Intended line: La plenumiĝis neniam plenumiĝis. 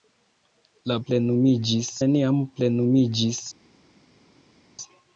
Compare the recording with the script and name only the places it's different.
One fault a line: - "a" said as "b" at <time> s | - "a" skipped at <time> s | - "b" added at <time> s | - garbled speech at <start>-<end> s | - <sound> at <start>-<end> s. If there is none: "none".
none